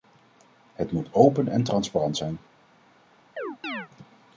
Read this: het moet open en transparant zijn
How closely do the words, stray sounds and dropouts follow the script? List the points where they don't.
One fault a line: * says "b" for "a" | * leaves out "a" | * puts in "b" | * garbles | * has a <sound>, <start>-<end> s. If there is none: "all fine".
* has a chirp, 3.4-3.9 s